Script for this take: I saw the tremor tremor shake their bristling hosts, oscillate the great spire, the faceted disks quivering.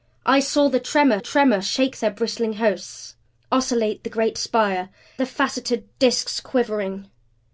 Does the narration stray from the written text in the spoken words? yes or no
no